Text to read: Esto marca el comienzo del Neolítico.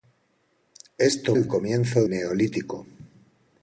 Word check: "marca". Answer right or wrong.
wrong